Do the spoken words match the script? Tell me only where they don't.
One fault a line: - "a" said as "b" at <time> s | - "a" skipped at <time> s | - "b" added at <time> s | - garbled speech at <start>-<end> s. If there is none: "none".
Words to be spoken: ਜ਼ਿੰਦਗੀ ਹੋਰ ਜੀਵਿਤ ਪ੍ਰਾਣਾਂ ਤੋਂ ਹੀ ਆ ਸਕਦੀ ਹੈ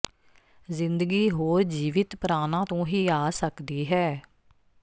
none